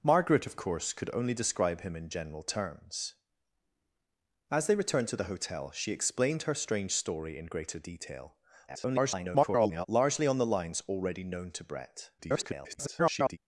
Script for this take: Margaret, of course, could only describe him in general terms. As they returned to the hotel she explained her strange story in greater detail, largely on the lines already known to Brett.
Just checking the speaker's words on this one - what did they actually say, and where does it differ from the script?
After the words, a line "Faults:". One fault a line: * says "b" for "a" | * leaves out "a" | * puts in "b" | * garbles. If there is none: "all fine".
Margaret, of course, could only describe him in general terms. As they returned to the hotel she explained her strange story in greater detail, [garbled] largely on the lines already known to Brett. [garbled]
Faults:
* garbles
* garbles